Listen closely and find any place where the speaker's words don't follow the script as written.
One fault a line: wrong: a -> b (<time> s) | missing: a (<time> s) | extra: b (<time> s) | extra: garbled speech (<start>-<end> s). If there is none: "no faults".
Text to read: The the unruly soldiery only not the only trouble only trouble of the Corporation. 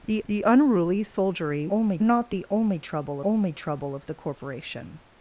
no faults